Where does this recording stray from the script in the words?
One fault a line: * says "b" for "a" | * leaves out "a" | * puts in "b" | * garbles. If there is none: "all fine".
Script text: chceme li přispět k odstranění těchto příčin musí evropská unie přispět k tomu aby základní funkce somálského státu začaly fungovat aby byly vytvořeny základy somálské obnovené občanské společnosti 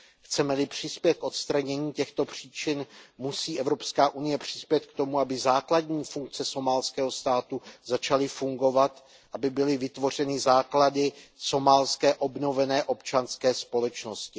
all fine